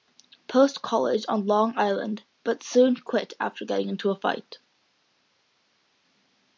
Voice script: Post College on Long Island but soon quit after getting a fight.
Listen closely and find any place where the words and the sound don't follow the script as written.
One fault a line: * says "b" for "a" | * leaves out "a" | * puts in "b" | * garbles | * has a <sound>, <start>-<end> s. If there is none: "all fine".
* puts in "into"